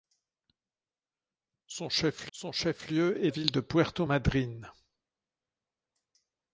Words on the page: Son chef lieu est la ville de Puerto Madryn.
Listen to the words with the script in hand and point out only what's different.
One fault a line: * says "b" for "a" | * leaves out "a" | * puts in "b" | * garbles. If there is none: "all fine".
* puts in "son chef"
* leaves out "la"